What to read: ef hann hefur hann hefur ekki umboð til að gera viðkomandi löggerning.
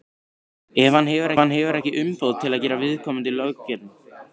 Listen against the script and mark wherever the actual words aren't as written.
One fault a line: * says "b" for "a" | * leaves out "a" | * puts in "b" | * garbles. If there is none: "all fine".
all fine